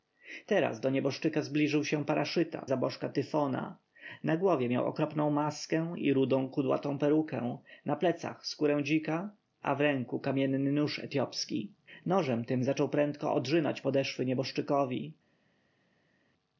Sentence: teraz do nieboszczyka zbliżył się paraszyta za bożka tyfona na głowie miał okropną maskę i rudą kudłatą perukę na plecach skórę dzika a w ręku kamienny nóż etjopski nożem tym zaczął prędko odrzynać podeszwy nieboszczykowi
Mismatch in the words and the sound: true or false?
false